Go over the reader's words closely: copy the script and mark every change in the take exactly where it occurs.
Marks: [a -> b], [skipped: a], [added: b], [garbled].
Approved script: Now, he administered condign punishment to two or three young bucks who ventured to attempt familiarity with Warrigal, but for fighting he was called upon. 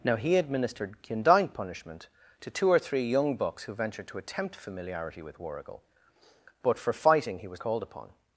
Now, he administered condign punishment to two or three young bucks who ventured to attempt familiarity with Warrigal, but for fighting he was called upon.